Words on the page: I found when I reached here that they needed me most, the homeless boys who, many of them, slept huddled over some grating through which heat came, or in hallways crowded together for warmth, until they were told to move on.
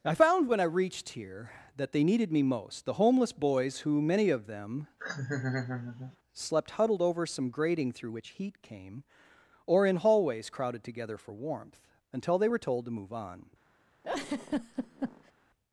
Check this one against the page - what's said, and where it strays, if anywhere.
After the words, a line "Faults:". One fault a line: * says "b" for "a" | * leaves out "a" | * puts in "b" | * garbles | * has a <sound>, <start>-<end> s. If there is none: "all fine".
I found when I reached here that they needed me most, the homeless boys who, many of them, slept huddled over some grating through which heat came, or in hallways crowded together for warmth, until they were told to move on.
Faults:
* has a laugh, 5.0-6.2 s
* has a laugh, 14.0-15.3 s